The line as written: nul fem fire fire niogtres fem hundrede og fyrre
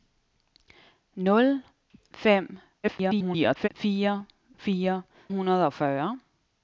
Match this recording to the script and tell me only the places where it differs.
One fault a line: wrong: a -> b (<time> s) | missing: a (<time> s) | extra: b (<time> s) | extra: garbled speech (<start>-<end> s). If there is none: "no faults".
extra: garbled speech (2.8-3.7 s)
missing: niogtres fem (5.0 s)